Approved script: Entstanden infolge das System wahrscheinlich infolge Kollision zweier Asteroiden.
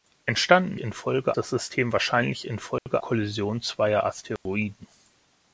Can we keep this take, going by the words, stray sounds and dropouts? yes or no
no